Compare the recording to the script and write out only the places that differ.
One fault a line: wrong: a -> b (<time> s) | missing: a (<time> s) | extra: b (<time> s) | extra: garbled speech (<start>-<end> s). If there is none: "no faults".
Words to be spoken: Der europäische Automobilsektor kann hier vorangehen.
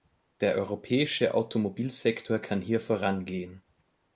no faults